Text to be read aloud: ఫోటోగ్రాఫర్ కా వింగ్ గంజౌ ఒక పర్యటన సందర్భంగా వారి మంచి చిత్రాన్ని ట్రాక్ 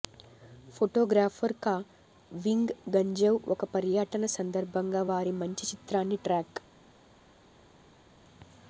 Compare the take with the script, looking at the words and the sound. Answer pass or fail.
pass